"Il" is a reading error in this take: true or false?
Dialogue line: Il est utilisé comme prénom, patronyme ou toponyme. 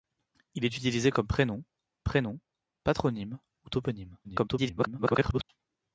false